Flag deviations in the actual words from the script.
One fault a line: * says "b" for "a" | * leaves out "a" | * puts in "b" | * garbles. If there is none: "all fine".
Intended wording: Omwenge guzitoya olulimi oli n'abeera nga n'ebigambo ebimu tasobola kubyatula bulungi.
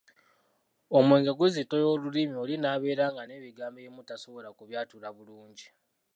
all fine